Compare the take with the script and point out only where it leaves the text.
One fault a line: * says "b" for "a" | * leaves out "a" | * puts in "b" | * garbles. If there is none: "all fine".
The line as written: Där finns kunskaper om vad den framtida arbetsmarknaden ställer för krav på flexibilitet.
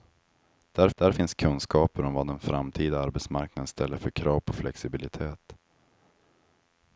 * puts in "där"